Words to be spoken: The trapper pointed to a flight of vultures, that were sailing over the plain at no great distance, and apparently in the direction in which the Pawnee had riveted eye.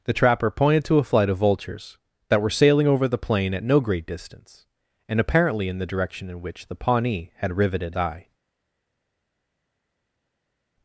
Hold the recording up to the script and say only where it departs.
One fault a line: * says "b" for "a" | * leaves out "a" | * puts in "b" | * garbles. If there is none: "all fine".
all fine